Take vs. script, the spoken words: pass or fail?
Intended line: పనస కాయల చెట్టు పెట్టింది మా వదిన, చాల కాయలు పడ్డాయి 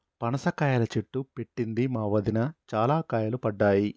pass